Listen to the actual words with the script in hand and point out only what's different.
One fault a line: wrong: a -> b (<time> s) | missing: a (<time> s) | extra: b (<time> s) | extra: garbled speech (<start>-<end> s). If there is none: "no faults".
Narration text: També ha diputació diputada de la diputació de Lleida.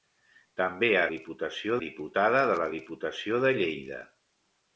no faults